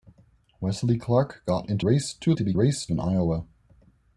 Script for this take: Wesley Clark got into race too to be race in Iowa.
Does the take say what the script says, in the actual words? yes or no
yes